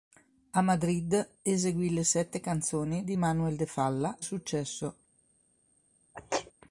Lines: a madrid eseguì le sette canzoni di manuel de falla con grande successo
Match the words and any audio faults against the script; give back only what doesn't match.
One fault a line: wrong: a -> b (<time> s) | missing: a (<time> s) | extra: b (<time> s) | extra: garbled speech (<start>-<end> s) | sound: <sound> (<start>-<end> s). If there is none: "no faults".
missing: con grande (4.2 s)
sound: sneeze (6.1-6.5 s)